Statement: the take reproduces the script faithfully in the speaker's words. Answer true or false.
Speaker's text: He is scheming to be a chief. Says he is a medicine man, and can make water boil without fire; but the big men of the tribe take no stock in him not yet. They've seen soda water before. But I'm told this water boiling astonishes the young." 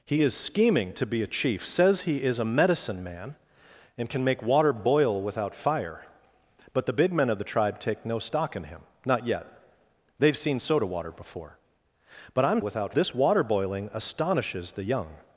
false